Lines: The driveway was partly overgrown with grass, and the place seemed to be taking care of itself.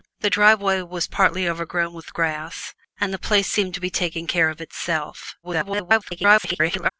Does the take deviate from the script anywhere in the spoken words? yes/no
yes